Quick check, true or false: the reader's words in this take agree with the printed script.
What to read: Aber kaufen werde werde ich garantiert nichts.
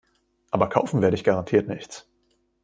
false